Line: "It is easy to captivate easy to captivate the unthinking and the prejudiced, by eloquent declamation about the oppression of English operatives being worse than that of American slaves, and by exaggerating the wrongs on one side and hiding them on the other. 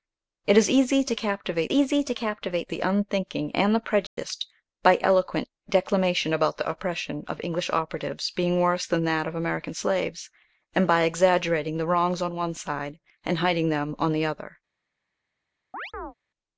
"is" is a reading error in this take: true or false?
false